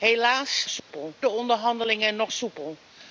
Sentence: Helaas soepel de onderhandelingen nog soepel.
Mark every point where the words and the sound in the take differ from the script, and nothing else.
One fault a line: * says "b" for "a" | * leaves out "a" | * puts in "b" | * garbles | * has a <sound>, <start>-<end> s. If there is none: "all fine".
* has a dropout, 0.8-0.9 s